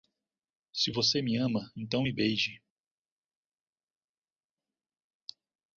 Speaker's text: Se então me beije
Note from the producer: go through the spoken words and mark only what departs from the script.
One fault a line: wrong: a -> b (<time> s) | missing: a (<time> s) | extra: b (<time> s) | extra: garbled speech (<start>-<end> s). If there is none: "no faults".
extra: você me ama (0.9 s)